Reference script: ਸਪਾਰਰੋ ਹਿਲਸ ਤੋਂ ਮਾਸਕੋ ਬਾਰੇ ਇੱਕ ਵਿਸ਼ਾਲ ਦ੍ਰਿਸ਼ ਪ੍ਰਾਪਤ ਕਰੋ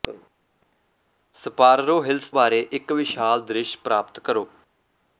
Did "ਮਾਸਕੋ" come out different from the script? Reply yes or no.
yes